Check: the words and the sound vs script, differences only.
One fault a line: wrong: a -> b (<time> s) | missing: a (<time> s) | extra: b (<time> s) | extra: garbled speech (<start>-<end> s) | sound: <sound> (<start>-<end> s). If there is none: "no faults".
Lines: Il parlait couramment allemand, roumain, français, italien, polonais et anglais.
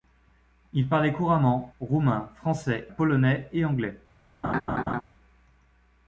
missing: allemand (1.7 s)
missing: italien (2.9 s)
sound: laugh (4.4-5.0 s)